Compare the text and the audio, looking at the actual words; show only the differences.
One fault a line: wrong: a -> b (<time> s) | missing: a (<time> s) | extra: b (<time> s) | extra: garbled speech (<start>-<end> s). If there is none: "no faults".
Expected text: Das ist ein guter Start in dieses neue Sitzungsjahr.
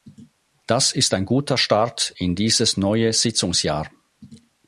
no faults